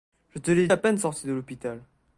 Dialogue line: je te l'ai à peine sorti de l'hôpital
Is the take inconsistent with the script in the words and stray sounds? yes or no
no